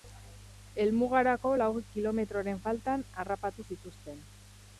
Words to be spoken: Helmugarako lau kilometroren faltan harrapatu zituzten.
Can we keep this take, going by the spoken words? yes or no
yes